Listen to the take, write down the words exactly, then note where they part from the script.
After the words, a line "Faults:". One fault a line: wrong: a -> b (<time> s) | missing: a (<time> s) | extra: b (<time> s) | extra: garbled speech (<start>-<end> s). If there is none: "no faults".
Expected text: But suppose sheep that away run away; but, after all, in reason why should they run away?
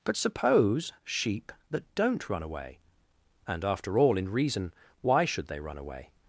But suppose sheep that don't run away; and, after all, in reason why should they run away?
Faults:
wrong: away -> don't (2.0 s)
wrong: but -> and (3.5 s)